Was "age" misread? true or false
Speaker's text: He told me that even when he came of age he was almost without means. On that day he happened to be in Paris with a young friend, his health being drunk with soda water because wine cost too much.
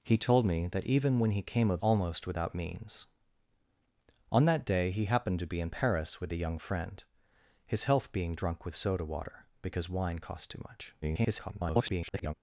true